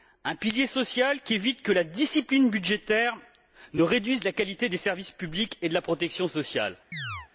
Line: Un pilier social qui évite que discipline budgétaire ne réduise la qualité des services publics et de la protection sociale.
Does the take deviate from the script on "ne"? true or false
false